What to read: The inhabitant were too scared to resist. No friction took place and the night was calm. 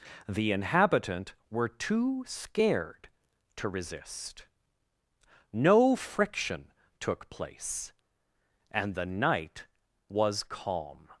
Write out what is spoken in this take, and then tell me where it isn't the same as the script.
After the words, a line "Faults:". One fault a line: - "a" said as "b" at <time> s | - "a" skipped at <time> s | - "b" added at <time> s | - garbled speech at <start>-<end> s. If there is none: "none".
The inhabitant were too scared to resist. No friction took place and the night was calm.
Faults:
none